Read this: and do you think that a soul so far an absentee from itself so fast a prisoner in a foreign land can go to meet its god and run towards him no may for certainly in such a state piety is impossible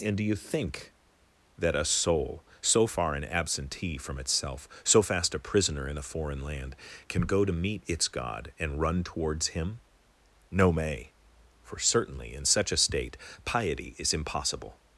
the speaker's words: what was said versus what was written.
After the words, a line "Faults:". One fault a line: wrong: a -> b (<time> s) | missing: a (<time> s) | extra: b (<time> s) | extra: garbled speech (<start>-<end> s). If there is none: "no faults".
and do you think that a soul so far an absentee from itself so fast a prisoner in a foreign land can go to meet its god and run towards him no may for certainly in such a state piety is impossible
Faults:
no faults